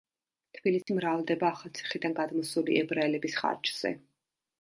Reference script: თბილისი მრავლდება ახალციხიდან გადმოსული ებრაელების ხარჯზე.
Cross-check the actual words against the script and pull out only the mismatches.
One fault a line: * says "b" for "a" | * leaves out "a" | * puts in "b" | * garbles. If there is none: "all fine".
all fine